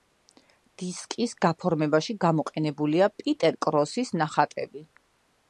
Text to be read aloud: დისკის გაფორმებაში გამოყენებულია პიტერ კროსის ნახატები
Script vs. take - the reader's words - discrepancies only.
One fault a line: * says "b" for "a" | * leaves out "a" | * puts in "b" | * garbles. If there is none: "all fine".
all fine